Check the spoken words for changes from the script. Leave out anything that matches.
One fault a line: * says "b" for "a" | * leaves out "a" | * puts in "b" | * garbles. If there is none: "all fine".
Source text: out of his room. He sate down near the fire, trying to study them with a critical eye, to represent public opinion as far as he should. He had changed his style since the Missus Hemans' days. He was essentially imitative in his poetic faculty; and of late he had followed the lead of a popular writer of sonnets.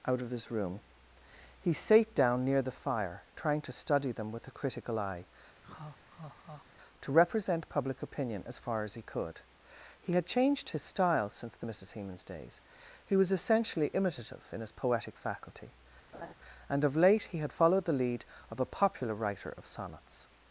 * says "could" for "should"